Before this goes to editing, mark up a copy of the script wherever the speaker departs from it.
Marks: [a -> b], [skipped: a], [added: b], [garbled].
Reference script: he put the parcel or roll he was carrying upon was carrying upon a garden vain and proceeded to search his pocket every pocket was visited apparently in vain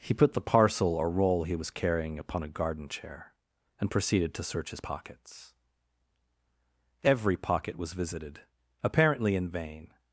he put the parcel or roll he was carrying upon [skipped: was carrying upon] a garden [vain -> chair] and proceeded to search his [pocket -> pockets] every pocket was visited apparently in vain